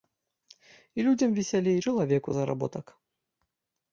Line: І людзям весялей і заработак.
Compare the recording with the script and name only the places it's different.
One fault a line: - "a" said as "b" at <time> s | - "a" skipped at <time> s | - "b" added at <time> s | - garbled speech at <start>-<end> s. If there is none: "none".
- "чалавеку" added at 1.9 s